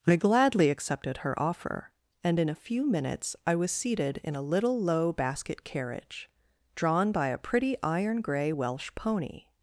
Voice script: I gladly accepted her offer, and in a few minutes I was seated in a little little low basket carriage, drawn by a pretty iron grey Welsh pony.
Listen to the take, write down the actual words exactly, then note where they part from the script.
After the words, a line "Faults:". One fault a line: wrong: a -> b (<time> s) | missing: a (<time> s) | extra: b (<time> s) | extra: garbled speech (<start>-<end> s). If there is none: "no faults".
I gladly accepted her offer, and in a few minutes I was seated in a little low basket carriage, drawn by a pretty iron grey Welsh pony.
Faults:
missing: little (4.8 s)